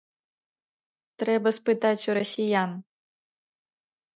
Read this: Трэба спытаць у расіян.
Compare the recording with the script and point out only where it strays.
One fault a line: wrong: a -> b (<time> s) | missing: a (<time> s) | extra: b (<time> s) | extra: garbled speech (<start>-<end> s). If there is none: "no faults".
no faults